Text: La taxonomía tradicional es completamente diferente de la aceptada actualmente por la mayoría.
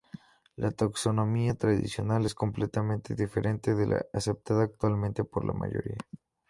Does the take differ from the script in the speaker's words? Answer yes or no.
no